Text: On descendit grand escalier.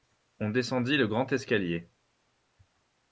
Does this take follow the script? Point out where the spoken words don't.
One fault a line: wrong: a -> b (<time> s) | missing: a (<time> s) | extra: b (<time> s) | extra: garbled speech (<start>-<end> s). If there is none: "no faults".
extra: le (1.0 s)